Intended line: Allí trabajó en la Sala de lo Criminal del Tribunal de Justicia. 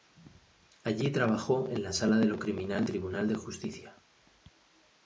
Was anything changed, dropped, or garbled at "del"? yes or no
yes